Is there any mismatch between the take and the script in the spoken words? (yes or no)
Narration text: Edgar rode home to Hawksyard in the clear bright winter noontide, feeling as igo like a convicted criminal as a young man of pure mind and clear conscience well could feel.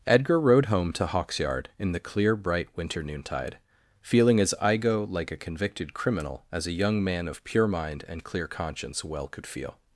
no